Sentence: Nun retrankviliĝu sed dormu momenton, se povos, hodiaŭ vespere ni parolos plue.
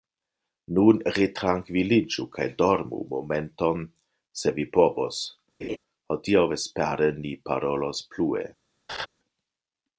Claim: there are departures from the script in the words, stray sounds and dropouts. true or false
true